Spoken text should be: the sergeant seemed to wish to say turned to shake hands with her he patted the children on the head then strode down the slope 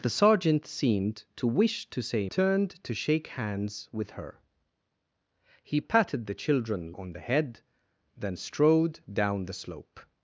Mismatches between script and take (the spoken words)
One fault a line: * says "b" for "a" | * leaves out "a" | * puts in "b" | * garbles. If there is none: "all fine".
all fine